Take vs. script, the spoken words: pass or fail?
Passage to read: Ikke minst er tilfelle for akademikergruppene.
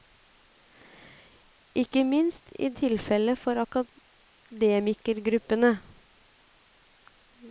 pass